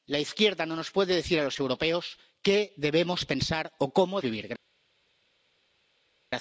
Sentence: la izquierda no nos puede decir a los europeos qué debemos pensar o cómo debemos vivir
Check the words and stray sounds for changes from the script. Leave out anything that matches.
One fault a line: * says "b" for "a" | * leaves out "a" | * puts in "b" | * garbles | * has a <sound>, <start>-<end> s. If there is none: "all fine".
* leaves out "debemos"